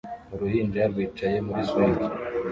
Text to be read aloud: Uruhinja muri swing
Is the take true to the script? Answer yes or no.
no